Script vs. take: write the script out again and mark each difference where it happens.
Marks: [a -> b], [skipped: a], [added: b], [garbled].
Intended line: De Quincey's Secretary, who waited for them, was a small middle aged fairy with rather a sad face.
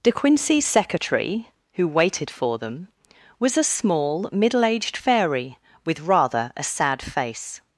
De Quincey's Secretary, who waited for them, was a small middle aged fairy with rather a sad face.